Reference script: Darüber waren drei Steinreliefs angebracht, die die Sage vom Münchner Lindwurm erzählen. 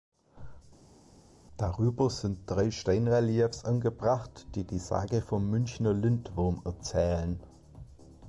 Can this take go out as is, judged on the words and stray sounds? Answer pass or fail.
fail